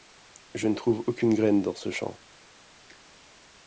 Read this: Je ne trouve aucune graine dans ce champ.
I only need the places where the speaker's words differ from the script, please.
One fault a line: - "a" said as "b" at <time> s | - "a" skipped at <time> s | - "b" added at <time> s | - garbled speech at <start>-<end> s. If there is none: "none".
none